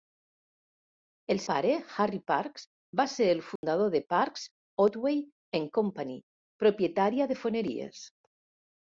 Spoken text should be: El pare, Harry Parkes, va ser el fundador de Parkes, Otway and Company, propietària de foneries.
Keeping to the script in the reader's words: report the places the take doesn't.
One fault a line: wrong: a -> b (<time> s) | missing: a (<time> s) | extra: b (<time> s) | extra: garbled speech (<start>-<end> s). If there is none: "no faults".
no faults